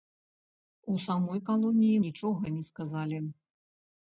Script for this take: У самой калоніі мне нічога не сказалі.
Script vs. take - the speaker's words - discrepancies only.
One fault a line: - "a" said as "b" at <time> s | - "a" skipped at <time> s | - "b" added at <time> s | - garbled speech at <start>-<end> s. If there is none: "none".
- "мне" skipped at 2.0 s